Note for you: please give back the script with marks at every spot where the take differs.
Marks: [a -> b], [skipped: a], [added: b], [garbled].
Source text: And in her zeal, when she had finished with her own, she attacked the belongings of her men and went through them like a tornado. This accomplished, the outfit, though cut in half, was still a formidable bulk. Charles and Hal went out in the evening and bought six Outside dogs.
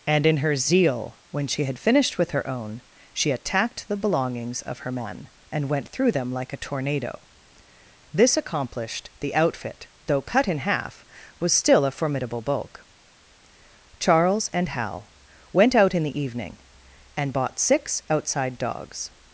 And in her zeal, when she had finished with her own, she attacked the belongings of her men and went through them like a tornado. This accomplished, the outfit, though cut in half, was still a formidable bulk. Charles and Hal went out in the evening and bought six Outside dogs.